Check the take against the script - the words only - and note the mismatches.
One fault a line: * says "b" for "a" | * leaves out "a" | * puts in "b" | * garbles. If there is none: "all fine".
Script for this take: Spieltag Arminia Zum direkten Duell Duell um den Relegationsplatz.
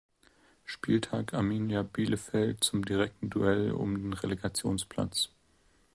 * puts in "Bielefeld"
* leaves out "Duell"